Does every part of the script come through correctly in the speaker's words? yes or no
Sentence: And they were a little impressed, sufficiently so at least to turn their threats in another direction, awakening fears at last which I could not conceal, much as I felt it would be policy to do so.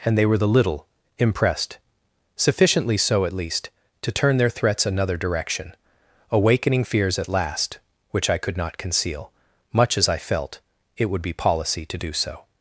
no